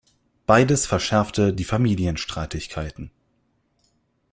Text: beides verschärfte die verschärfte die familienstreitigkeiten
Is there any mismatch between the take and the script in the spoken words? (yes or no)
yes